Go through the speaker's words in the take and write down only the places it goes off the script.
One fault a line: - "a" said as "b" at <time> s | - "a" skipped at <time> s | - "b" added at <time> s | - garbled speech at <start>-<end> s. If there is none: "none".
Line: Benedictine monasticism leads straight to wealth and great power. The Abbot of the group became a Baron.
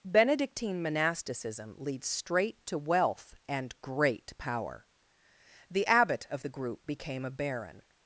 none